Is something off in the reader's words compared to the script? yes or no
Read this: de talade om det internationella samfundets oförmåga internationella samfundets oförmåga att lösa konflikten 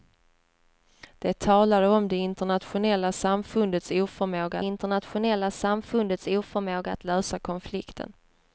no